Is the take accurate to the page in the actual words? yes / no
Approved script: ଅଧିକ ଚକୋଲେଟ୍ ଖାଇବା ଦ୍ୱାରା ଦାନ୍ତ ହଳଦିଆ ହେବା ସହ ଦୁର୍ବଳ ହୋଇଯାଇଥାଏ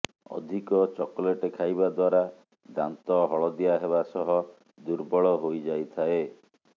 yes